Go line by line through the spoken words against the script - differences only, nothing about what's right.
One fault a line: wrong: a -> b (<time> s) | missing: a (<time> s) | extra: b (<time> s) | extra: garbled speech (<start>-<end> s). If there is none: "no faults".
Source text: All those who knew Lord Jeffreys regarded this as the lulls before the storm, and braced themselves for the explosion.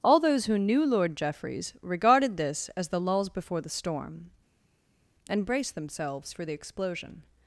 no faults